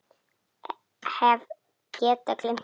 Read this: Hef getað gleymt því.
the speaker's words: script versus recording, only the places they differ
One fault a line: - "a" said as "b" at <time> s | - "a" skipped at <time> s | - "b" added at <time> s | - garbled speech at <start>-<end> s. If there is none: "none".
none